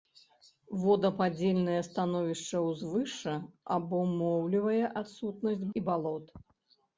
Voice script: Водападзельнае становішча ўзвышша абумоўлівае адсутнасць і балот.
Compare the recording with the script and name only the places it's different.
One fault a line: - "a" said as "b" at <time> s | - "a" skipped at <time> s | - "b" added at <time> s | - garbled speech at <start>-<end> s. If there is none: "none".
none